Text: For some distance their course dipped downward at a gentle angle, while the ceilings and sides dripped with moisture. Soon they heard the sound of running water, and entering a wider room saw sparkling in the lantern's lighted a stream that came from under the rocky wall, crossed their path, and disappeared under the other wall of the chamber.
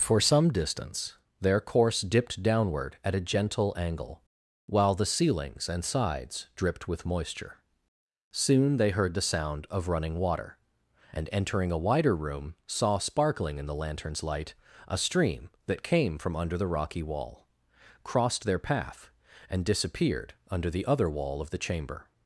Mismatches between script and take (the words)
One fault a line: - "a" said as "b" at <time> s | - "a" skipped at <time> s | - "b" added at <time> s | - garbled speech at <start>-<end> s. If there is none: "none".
- "lighted" said as "light" at 14.2 s